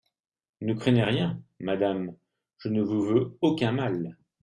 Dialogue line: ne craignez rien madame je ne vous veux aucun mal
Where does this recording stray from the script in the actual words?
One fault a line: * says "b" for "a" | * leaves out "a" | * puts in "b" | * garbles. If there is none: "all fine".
all fine